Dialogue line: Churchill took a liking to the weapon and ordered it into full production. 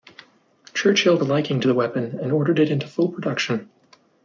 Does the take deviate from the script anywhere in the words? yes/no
yes